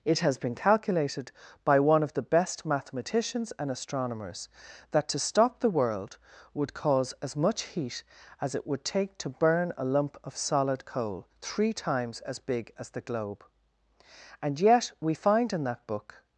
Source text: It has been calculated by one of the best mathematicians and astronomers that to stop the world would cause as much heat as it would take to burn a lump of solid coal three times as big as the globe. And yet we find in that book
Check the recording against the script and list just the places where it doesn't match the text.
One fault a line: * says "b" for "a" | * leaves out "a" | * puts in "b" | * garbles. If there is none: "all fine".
all fine